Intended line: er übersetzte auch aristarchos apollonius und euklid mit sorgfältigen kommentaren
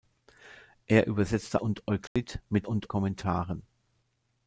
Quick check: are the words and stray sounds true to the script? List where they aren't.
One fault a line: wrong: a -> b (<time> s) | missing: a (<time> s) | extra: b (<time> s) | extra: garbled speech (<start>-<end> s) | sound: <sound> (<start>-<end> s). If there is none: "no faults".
missing: auch aristarchos apollonius (1.6 s)
sound: dropout (2.1-2.2 s)
wrong: sorgfältigen -> und (2.6 s)